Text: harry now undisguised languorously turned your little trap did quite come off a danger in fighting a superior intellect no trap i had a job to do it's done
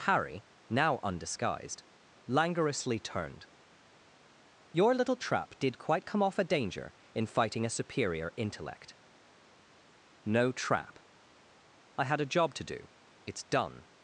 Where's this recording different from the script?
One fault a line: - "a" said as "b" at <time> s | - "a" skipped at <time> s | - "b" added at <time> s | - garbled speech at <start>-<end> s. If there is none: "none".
none